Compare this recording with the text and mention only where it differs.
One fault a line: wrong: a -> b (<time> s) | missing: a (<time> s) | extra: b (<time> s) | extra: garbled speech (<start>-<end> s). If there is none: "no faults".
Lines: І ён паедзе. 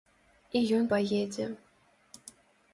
no faults